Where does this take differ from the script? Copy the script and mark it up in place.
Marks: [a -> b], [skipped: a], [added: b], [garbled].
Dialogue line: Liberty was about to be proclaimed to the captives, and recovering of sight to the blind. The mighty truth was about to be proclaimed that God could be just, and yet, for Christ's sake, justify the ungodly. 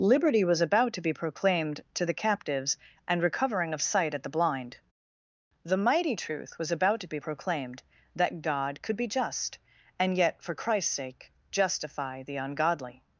Liberty was about to be proclaimed to the captives, and recovering of sight [to -> at] the blind. The mighty truth was about to be proclaimed that God could be just, and yet, for Christ's sake, justify the ungodly.